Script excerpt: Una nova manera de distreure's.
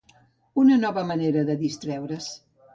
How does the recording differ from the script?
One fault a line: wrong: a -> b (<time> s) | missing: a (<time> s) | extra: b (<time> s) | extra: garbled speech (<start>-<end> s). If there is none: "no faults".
no faults